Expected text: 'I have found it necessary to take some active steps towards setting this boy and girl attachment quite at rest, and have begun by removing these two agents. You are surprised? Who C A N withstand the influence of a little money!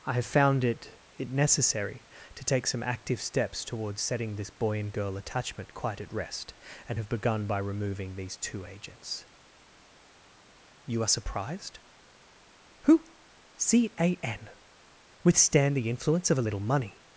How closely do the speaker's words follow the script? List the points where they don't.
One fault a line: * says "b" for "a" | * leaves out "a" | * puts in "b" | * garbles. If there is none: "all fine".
* puts in "it"